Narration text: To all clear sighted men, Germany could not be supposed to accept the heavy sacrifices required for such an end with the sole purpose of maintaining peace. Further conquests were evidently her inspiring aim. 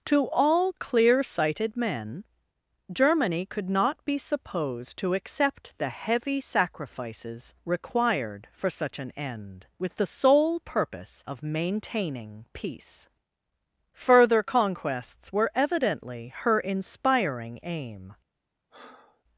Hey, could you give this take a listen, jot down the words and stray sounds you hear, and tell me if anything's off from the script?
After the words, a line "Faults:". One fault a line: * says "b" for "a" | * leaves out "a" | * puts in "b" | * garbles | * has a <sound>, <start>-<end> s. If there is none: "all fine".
To all clear sighted men, Germany could not be supposed to accept the heavy sacrifices required for such an end with the sole purpose of maintaining peace. Further conquests were evidently her inspiring aim.
Faults:
* has a breath, 18.7-19.2 s